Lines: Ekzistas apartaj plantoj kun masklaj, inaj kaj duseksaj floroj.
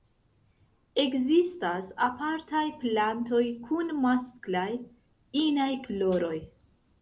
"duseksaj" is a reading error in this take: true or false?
true